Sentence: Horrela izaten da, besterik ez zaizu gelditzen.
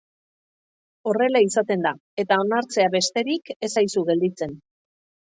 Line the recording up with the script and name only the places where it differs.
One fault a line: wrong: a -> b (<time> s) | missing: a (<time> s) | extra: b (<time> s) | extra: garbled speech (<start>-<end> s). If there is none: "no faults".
extra: eta onartzea (2.2 s)